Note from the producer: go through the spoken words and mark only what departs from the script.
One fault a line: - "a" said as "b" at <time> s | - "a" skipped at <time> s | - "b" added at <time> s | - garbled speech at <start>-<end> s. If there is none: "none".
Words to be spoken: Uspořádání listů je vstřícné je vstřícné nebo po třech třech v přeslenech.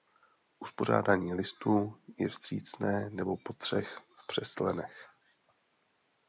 - "je vstřícné" skipped at 3.1 s
- "třech" skipped at 4.0 s